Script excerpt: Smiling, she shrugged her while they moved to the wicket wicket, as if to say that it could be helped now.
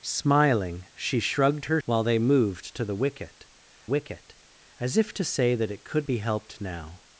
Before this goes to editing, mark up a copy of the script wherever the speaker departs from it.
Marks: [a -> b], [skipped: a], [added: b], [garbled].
Smiling, she shrugged her while they moved to the wicket wicket, as if to say that it could be helped now.